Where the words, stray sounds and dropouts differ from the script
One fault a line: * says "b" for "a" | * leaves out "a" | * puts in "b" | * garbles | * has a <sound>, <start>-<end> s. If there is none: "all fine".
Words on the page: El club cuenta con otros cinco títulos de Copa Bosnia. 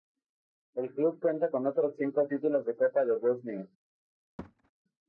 * puts in "de"
* has a thud, 4.4-4.7 s